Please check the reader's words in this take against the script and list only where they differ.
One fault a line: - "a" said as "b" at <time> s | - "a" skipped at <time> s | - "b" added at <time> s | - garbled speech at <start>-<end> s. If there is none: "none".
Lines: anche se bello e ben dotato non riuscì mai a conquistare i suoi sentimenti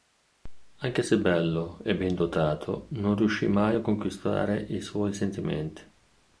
none